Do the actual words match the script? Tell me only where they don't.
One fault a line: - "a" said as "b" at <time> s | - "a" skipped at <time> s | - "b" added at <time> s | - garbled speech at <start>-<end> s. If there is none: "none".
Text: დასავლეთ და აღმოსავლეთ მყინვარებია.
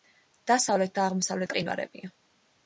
none